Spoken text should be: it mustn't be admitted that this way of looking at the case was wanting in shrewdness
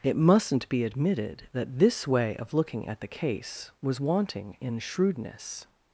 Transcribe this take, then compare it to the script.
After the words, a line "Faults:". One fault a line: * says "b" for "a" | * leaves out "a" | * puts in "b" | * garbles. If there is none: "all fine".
it mustn't be admitted that this way of looking at the case was wanting in shrewdness
Faults:
all fine